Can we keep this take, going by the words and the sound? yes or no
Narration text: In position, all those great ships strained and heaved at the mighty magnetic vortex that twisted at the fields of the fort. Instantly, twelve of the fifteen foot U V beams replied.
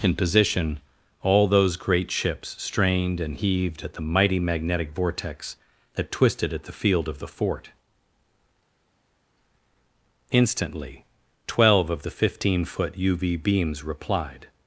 no